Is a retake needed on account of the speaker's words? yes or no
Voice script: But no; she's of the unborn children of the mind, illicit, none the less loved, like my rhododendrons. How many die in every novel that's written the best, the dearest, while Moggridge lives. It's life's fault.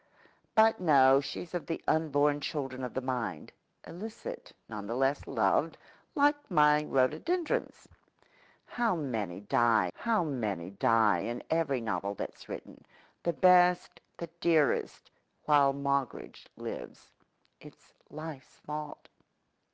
yes